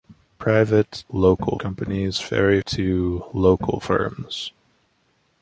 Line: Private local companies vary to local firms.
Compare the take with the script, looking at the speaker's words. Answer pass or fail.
pass